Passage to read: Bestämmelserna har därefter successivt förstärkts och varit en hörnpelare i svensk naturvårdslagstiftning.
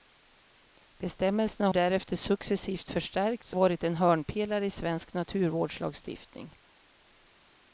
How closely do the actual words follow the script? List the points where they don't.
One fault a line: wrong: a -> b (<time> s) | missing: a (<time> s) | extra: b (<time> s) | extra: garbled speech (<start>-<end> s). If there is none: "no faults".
missing: har (1.7 s)
missing: och (3.5 s)